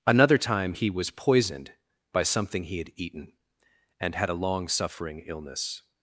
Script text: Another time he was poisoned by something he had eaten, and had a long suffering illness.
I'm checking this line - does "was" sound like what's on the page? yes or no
yes